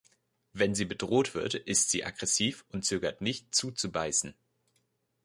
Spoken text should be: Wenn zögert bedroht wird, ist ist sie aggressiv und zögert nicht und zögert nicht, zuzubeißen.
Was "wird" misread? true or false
false